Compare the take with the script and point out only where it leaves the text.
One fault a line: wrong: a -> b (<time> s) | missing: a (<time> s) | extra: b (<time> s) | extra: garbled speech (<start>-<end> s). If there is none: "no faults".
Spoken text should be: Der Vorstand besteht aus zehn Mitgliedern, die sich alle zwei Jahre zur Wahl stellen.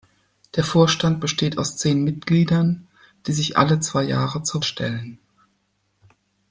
missing: Wahl (4.6 s)